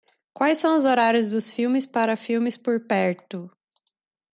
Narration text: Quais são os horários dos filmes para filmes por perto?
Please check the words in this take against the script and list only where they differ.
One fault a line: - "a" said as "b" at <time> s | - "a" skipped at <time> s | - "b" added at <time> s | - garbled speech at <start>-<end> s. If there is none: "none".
none